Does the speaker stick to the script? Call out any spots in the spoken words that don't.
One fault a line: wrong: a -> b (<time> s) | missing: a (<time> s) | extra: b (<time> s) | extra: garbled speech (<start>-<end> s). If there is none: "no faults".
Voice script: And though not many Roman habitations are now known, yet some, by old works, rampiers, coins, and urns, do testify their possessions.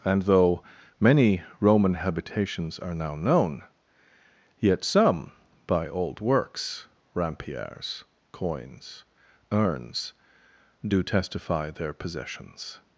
missing: not (0.6 s)
missing: and (9.1 s)